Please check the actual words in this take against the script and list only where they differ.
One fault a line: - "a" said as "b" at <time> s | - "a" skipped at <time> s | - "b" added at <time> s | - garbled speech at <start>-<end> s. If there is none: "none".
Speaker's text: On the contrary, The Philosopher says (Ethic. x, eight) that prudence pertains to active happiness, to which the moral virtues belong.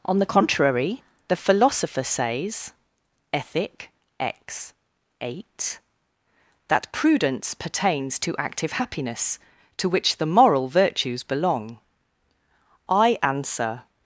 - "I answer" added at 12.9 s